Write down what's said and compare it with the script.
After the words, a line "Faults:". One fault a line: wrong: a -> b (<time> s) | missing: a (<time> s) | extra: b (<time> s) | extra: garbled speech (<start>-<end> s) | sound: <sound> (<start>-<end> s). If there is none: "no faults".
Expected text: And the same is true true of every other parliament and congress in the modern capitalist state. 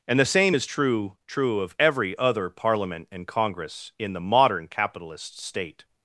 And the same is true true of every other parliament and congress in the modern capitalist state.
Faults:
no faults